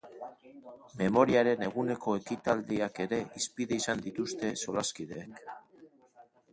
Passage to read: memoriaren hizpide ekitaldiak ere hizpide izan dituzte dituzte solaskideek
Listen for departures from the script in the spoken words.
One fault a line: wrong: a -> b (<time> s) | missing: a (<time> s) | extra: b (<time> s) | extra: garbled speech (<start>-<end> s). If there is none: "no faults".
wrong: hizpide -> eguneko (1.7 s)
missing: dituzte (4.6 s)